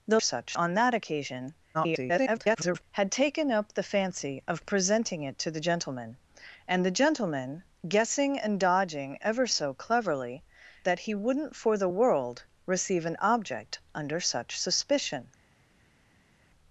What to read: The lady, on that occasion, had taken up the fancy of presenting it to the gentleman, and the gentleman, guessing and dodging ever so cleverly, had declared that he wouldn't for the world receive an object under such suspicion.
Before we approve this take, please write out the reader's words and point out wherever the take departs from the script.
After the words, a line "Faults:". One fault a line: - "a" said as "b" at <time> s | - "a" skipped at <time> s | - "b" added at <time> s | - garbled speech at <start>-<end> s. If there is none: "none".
The such, on that occasion, [garbled] had taken up the fancy of presenting it to the gentleman, and the gentleman, guessing and dodging ever so cleverly, that he wouldn't for the world receive an object under such suspicion.
Faults:
- "lady" said as "such" at 0.2 s
- garbled speech at 1.7-2.8 s
- "had declared" skipped at 10.4 s